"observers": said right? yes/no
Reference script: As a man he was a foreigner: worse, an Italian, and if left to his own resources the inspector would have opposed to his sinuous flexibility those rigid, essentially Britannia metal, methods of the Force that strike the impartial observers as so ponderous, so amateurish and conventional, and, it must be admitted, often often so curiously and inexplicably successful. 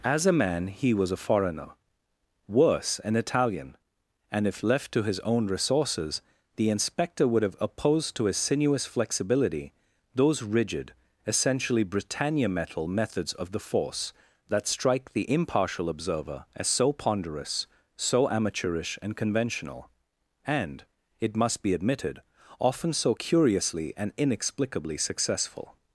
no